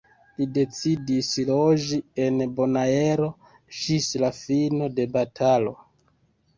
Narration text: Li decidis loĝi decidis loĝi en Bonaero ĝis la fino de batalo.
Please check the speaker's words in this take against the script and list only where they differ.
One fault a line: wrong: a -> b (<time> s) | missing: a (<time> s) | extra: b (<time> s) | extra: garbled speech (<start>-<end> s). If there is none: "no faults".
missing: decidis loĝi (2.0 s)